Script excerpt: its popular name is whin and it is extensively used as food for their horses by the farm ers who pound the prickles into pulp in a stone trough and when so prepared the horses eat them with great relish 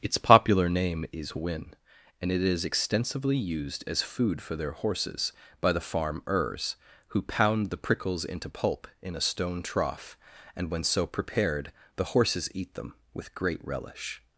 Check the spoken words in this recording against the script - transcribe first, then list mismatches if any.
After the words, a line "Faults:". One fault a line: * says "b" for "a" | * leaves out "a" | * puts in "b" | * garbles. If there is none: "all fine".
its popular name is whin and it is extensively used as food for their horses by the farm ers who pound the prickles into pulp in a stone trough and when so prepared the horses eat them with great relish
Faults:
all fine